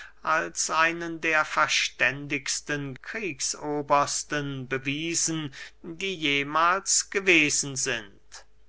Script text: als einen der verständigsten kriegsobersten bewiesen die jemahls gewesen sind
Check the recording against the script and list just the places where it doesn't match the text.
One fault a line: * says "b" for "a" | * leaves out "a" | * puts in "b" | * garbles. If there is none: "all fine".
all fine